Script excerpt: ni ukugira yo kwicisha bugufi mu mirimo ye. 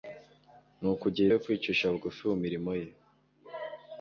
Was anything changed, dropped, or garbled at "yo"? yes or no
no